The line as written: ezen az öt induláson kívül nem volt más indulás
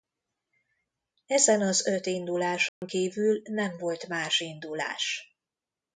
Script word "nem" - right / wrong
right